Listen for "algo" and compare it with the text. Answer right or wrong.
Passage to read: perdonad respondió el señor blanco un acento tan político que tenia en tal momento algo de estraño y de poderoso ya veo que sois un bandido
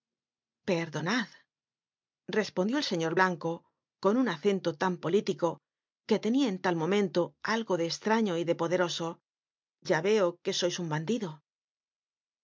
right